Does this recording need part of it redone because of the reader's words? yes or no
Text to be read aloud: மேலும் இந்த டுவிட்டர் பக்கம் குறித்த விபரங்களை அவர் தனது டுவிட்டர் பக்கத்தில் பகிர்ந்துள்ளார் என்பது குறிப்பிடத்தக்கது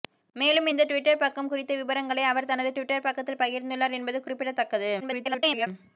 yes